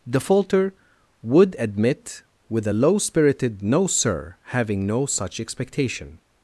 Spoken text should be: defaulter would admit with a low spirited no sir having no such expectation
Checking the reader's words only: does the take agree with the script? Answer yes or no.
yes